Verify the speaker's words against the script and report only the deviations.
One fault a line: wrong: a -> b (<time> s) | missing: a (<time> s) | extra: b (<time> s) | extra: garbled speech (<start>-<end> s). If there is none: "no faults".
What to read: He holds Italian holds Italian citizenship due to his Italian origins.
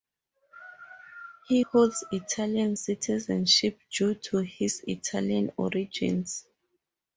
missing: holds Italian (2.8 s)